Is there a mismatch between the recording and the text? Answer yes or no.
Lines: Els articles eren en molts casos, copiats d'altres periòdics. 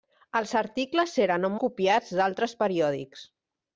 yes